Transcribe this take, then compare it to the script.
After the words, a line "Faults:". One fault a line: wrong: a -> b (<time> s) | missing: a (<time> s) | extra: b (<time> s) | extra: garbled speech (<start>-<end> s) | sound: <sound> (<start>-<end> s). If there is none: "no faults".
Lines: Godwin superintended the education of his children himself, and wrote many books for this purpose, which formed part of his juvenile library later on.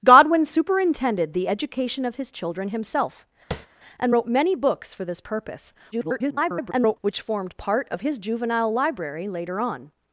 Godwin superintended the education of his children himself, and wrote many books for this purpose, [garbled] which formed part of his juvenile library later on.
Faults:
sound: tap (3.5-3.7 s)
extra: garbled speech (5.9-7.0 s)